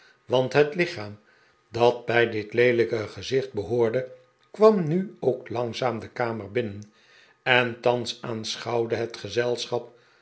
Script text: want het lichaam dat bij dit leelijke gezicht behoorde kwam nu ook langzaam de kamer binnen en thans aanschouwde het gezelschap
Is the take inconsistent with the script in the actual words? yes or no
no